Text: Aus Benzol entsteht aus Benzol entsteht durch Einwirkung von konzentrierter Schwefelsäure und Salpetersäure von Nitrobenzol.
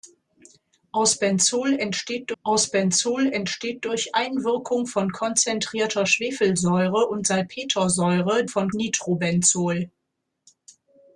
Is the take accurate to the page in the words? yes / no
yes